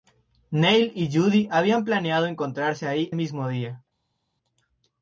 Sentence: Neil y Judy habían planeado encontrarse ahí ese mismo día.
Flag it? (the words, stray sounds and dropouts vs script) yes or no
yes